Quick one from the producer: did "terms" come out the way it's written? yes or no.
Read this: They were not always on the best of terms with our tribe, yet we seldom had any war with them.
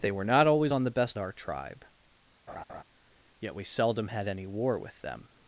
no